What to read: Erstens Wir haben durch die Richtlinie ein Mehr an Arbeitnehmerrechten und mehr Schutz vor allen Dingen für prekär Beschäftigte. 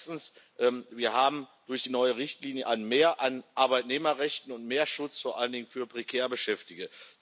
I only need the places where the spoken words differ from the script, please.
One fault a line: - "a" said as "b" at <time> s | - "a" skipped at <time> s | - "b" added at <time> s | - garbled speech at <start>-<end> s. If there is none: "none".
- "neue" added at 1.9 s